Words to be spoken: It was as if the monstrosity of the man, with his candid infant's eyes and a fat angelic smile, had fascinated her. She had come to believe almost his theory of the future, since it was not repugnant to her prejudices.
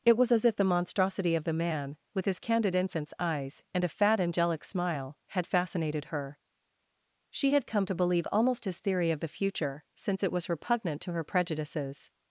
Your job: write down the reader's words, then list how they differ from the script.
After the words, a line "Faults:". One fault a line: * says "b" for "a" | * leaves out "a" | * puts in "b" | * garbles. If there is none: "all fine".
It was as if the monstrosity of the man, with his candid infant's eyes and a fat angelic smile, had fascinated her. She had come to believe almost his theory of the future, since it was repugnant to her prejudices.
Faults:
* leaves out "not"